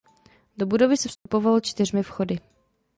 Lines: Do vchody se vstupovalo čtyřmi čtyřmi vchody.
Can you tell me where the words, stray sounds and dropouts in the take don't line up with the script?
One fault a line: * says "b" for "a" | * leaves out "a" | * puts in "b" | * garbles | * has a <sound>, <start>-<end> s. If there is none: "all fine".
* says "budovy" for "vchody"
* has a dropout, 1.2-1.3 s
* leaves out "čtyřmi"